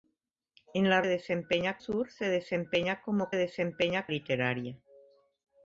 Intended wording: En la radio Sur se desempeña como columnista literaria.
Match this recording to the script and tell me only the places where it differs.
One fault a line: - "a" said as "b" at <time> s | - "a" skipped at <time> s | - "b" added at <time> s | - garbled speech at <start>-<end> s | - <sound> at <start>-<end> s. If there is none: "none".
- "radio" said as "desempeña" at 1.1 s
- "columnista" said as "desempeña" at 3.3 s